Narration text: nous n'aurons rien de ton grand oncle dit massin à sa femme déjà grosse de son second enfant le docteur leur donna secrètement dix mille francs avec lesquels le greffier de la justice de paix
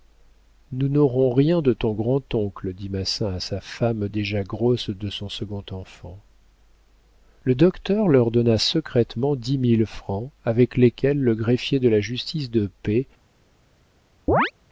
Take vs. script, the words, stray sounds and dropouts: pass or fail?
fail